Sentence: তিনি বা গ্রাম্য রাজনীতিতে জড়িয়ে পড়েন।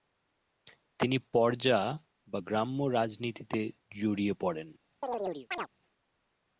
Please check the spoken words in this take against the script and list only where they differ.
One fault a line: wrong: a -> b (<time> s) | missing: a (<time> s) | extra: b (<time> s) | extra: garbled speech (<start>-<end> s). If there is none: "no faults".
extra: পর্জা (1.3 s)